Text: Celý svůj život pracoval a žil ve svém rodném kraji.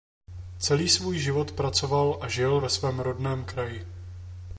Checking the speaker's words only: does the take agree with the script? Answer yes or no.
yes